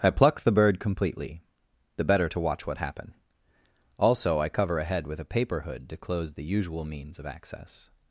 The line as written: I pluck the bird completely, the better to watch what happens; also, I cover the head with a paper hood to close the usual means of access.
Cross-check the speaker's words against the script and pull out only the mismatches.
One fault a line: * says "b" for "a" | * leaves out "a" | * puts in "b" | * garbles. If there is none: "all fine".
* says "happen" for "happens"
* says "a" for "the"